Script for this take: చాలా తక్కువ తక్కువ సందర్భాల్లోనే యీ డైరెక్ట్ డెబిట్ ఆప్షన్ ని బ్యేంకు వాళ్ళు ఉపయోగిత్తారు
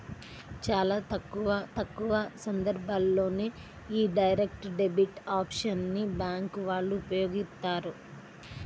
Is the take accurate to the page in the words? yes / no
yes